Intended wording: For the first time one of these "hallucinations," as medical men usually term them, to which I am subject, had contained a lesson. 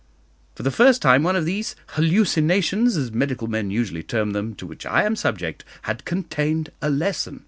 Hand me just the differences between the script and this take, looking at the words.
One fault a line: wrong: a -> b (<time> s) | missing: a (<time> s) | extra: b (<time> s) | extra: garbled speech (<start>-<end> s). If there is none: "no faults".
no faults